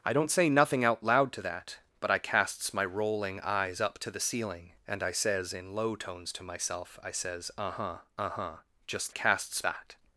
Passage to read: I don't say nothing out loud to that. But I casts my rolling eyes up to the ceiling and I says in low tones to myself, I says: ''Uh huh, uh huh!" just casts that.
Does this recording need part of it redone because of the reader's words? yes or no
no